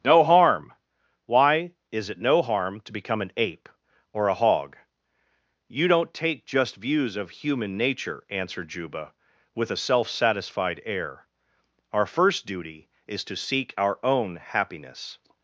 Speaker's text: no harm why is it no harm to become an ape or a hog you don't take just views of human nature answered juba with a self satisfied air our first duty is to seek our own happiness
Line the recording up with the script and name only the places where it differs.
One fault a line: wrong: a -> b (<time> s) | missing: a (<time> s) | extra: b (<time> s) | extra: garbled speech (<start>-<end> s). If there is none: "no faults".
no faults